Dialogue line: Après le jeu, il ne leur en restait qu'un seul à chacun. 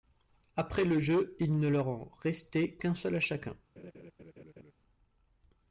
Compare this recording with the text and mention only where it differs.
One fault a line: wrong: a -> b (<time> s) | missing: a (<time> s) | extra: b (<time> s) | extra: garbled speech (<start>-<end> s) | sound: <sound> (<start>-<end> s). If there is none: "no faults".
sound: laugh (3.8-4.7 s)